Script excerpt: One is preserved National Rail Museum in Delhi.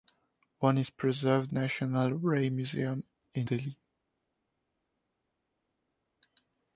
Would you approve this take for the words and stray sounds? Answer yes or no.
yes